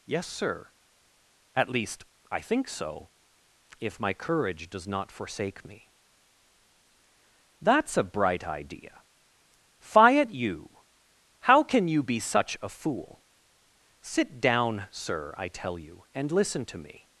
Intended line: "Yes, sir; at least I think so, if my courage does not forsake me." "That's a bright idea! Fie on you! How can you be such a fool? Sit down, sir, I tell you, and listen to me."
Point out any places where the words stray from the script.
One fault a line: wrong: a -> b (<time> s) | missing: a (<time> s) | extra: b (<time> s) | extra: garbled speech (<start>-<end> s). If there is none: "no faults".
wrong: on -> at (10.2 s)